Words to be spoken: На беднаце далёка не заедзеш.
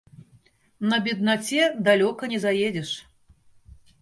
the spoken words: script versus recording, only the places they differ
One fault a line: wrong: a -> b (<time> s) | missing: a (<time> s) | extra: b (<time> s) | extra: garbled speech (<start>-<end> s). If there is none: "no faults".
no faults